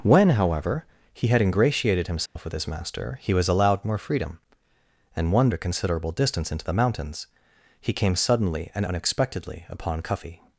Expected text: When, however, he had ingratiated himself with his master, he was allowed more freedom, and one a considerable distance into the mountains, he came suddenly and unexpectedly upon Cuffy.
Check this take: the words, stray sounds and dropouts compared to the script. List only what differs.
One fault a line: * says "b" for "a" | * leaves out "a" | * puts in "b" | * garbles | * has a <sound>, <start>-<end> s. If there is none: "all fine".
* has a dropout, 2.3-2.4 s